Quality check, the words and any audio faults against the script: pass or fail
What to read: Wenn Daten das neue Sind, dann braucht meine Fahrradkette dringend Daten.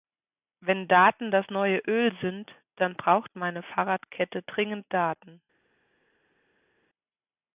fail